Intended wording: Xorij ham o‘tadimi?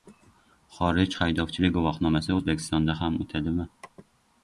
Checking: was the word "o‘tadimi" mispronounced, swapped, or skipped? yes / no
no